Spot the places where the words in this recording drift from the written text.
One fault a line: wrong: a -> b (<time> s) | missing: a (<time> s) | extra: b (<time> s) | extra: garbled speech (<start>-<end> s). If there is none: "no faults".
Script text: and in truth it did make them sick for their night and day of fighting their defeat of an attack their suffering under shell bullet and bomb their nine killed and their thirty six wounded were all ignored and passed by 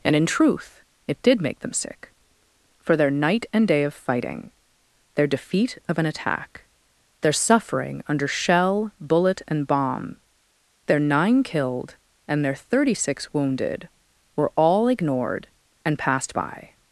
no faults